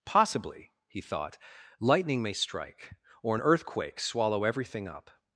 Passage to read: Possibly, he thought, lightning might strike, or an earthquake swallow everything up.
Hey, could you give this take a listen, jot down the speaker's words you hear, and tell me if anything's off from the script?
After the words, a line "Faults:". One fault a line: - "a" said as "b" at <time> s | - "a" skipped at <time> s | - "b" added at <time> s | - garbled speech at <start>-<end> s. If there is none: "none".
Possibly, he thought, lightning may strike, or an earthquake swallow everything up.
Faults:
- "might" said as "may" at 2.2 s